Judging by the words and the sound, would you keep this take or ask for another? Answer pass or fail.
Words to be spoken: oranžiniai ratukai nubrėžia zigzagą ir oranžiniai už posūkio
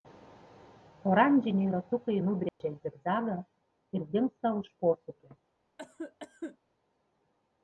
fail